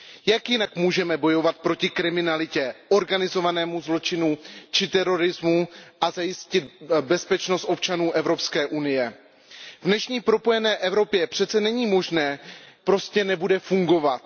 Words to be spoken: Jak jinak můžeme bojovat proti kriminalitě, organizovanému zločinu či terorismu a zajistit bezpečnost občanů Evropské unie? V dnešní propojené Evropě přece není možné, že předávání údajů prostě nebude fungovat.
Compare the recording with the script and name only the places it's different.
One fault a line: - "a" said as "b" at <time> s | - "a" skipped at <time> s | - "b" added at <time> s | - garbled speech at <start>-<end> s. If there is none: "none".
- "že předávání údajů" skipped at 12.4 s